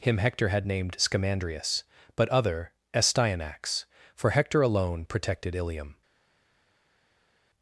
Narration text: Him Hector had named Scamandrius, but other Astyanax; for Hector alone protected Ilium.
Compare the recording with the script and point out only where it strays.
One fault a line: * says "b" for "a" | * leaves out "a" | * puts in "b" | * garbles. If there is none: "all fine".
all fine